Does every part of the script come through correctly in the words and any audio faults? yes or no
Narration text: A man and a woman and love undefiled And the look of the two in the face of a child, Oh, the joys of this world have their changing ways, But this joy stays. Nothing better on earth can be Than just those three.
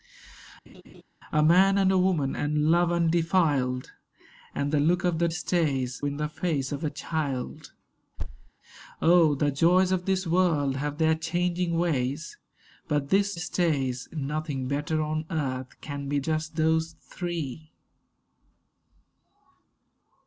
no